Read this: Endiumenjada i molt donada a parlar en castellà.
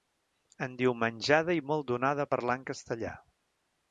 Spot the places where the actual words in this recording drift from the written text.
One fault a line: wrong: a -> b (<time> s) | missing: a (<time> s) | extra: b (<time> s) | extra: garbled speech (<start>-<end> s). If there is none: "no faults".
no faults